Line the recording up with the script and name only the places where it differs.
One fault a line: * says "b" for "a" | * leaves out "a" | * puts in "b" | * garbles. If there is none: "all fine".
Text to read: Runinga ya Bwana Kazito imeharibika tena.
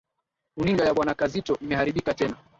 all fine